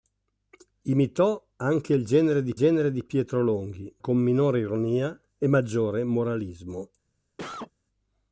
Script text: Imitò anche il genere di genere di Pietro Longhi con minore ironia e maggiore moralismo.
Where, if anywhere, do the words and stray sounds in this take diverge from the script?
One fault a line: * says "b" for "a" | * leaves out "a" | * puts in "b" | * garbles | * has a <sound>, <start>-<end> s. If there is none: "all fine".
* has a cough, 7.4-7.7 s